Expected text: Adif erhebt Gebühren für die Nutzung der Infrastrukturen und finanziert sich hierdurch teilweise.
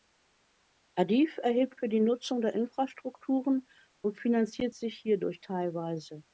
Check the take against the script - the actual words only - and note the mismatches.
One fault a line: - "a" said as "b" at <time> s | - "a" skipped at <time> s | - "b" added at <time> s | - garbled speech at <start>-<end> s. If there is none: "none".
- "Gebühren" skipped at 1.8 s